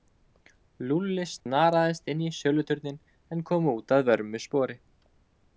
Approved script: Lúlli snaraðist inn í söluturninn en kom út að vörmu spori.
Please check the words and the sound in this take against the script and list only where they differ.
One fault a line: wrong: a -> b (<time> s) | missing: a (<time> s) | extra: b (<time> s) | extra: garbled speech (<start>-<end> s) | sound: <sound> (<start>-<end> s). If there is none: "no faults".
sound: dropout (1.4-1.5 s)